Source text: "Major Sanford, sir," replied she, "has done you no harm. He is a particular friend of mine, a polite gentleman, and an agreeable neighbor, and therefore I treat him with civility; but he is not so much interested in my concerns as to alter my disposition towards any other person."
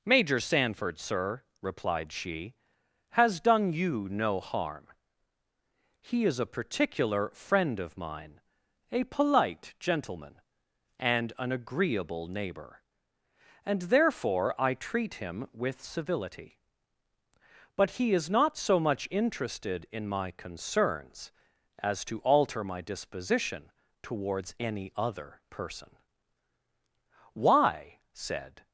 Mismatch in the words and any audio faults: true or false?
true